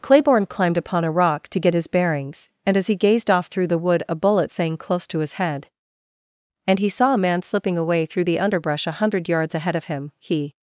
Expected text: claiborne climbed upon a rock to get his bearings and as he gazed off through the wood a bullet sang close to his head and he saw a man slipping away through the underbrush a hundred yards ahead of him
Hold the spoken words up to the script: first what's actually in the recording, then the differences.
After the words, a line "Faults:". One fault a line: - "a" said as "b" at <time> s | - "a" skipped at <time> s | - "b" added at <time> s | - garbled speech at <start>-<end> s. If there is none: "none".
claiborne climbed upon a rock to get his bearings and as he gazed off through the wood a bullet sang close to his head and he saw a man slipping away through the underbrush a hundred yards ahead of him he
Faults:
- "he" added at 10.2 s